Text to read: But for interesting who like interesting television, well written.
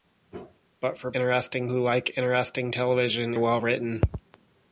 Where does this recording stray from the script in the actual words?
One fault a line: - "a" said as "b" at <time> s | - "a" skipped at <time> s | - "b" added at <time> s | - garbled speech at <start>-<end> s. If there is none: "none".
none